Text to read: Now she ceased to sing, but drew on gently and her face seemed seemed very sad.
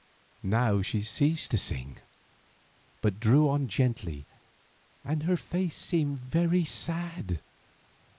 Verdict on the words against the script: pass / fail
fail